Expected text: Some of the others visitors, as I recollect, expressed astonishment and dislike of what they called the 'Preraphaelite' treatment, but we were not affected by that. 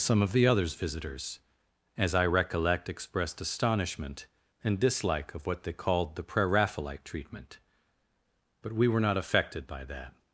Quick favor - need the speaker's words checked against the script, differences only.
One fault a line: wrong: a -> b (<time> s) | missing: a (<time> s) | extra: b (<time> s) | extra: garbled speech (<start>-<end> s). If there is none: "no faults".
no faults